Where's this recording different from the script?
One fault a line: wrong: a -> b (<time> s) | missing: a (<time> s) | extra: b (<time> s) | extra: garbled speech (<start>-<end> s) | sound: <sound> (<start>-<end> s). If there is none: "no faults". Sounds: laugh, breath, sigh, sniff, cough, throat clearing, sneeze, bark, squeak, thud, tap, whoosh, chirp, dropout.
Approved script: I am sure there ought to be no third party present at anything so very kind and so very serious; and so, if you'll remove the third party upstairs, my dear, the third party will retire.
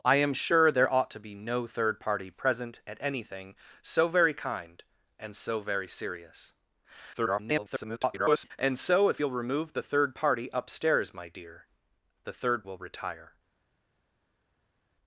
extra: garbled speech (7.1-8.5 s)
missing: party (12.6 s)